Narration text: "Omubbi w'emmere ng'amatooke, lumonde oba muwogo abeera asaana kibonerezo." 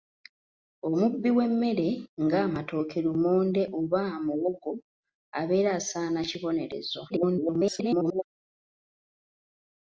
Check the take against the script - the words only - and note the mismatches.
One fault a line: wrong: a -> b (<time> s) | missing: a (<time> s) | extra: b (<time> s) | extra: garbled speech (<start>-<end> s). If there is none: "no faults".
extra: garbled speech (7.1-8.2 s)